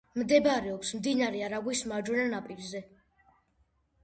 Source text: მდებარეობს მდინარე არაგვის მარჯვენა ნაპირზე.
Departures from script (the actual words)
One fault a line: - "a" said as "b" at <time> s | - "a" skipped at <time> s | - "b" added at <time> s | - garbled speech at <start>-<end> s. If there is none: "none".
none